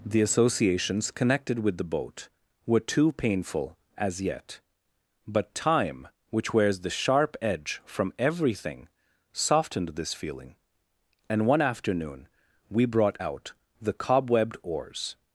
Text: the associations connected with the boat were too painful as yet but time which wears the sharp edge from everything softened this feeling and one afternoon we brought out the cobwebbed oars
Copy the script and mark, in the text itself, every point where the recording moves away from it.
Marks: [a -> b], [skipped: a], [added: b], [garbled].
the associations connected with the boat were too painful as yet but time which wears the sharp edge from everything softened this feeling and one afternoon we brought out the cobwebbed oars